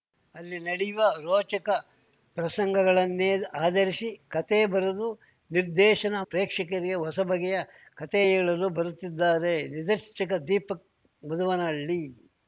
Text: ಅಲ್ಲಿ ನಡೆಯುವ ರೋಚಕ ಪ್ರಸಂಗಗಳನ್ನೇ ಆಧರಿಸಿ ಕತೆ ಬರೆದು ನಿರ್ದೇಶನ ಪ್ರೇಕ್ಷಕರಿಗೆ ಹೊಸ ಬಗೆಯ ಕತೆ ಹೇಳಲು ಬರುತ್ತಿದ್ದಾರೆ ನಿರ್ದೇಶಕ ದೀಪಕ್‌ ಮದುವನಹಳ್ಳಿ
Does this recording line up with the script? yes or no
yes